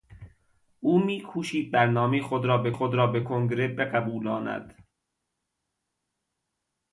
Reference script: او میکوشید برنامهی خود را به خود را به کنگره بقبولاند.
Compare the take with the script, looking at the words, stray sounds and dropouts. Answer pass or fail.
pass